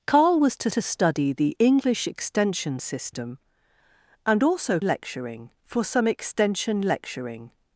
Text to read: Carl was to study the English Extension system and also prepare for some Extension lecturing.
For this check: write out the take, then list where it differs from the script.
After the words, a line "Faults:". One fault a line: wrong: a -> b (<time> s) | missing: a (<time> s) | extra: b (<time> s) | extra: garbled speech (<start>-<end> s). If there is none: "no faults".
Carl was to to study the English Extension system and also lecturing for some Extension lecturing.
Faults:
extra: to (0.7 s)
wrong: prepare -> lecturing (4.8 s)